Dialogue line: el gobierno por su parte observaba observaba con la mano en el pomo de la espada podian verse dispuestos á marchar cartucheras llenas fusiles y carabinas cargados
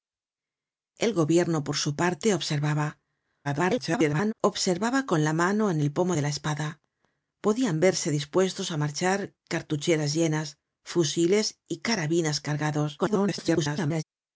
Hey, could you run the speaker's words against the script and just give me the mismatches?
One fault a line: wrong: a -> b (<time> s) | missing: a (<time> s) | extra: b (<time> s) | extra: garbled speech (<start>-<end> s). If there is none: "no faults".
extra: garbled speech (3.4-4.3 s)
extra: garbled speech (13.0-14.0 s)